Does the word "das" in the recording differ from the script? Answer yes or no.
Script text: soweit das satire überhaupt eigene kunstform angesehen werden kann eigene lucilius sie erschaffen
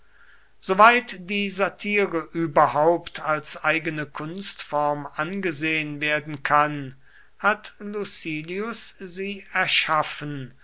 yes